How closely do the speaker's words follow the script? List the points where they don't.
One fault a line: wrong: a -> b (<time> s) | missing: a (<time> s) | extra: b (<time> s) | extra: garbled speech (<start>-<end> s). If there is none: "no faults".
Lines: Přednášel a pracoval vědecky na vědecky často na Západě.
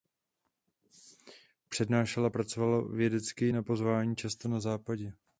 wrong: vědecky -> pozvání (3.6 s)